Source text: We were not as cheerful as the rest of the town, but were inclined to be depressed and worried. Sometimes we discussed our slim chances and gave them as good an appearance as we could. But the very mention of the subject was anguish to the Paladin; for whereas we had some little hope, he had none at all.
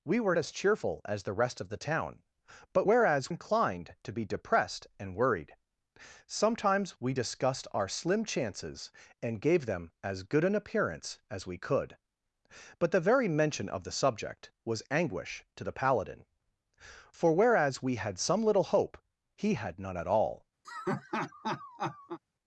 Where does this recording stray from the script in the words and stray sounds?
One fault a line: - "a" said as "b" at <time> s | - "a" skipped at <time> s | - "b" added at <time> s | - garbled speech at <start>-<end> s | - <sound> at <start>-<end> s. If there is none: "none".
- "not" skipped at 0.3 s
- "were" said as "whereas" at 2.8 s
- laugh at 20.6-22.2 s